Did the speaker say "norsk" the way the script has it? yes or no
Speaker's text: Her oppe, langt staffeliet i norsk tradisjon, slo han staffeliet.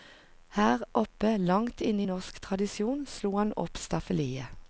yes